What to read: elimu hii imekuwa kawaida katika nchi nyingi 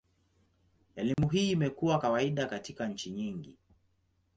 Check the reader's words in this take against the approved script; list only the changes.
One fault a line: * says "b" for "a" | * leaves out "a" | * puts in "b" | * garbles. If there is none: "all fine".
all fine